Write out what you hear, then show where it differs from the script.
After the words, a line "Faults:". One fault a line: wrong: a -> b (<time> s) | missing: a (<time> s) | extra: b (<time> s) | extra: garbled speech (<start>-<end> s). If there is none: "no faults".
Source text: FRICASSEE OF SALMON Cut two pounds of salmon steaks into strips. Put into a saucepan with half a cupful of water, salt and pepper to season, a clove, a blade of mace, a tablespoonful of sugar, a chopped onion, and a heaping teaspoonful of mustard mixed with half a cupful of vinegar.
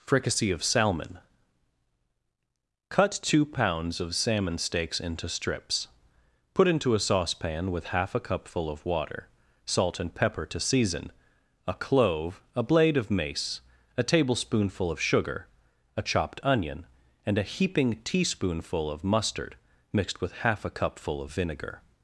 FRICASSEE OF SALMON Cut two pounds of salmon steaks into strips. Put into a saucepan with half a cupful of water, salt and pepper to season, a clove, a blade of mace, a tablespoonful of sugar, a chopped onion, and a heaping teaspoonful of mustard mixed with half a cupful of vinegar.
Faults:
no faults